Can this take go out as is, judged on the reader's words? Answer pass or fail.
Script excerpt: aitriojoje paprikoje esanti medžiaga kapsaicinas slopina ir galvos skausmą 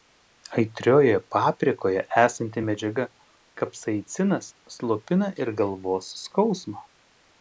pass